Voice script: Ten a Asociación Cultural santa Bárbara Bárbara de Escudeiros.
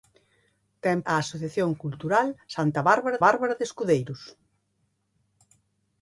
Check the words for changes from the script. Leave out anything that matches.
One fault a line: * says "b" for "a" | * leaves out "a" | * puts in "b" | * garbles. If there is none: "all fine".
all fine